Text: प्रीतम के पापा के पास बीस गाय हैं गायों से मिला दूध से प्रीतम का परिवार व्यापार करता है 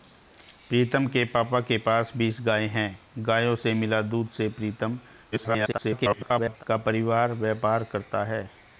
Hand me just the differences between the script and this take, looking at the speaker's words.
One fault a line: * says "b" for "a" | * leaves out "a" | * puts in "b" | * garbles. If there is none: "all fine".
* garbles